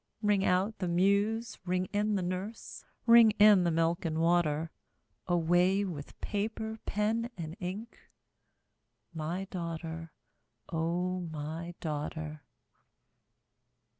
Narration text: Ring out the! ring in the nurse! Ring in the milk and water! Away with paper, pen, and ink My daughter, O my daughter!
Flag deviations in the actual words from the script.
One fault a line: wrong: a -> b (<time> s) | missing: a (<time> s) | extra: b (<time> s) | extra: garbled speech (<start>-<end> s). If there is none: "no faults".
extra: muse (0.9 s)